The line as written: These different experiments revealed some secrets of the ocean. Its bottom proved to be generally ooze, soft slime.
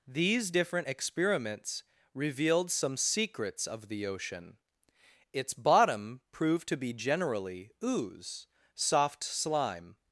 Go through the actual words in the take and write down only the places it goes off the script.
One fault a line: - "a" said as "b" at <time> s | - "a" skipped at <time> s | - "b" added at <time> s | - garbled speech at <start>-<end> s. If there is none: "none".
none